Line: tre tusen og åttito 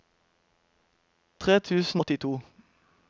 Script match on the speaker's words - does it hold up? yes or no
no